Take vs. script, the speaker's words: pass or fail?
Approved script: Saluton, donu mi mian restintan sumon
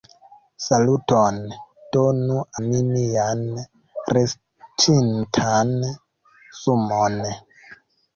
pass